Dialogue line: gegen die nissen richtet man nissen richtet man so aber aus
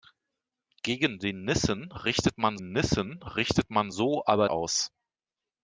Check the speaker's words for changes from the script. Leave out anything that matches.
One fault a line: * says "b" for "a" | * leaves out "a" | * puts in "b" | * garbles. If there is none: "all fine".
all fine